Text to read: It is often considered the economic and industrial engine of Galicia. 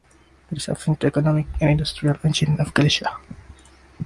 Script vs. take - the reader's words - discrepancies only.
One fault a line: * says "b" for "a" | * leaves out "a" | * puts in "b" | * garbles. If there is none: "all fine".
* leaves out "considered"